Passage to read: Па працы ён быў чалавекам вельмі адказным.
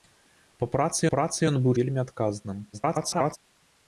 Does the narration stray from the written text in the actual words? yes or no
yes